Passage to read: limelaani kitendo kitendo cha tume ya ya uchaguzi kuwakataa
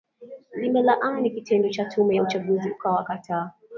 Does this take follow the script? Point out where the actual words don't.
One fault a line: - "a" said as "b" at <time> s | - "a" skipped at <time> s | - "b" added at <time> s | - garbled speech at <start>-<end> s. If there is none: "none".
- "kitendo" skipped at 1.7 s
- "ya" skipped at 2.2 s